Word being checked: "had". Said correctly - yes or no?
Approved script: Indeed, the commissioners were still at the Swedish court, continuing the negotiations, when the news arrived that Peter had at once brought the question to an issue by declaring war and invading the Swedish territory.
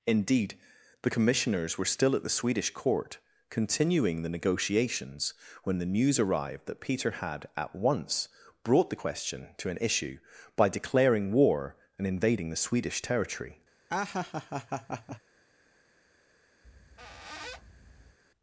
yes